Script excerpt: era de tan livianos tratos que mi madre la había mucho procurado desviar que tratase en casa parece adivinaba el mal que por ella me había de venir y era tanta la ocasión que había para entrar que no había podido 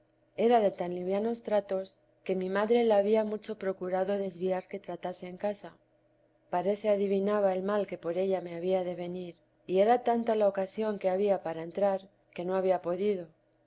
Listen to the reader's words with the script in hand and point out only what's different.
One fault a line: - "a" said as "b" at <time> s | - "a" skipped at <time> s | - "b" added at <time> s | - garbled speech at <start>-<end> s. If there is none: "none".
none